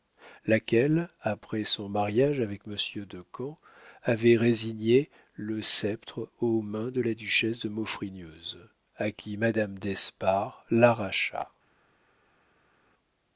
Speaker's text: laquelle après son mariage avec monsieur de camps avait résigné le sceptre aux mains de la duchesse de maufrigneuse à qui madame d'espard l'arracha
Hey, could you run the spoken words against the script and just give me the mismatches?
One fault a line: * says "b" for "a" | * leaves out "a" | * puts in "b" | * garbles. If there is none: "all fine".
all fine